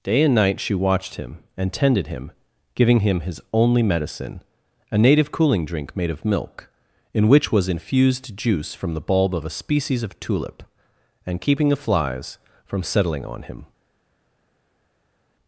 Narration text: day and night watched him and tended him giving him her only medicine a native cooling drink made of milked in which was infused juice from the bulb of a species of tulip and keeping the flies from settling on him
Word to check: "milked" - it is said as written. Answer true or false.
false